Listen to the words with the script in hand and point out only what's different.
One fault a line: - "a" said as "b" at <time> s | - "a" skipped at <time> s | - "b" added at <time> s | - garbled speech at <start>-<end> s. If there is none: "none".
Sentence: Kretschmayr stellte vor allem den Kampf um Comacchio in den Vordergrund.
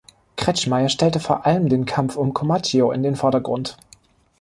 none